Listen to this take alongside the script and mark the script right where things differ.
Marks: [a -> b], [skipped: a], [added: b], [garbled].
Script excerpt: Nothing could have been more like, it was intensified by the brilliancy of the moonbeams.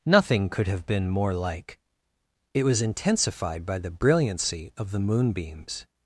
Nothing could have been more like, it was intensified by the brilliancy of the moonbeams.